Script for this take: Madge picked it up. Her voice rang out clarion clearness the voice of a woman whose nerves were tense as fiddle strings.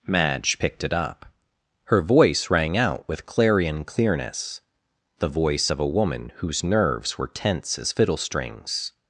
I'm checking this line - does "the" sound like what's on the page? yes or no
yes